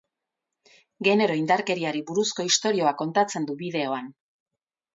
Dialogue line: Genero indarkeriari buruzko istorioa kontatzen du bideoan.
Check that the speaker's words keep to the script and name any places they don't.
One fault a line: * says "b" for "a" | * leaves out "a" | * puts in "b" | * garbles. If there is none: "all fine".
all fine